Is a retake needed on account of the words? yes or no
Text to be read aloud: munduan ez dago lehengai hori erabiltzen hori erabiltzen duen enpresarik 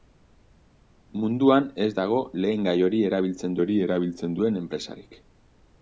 no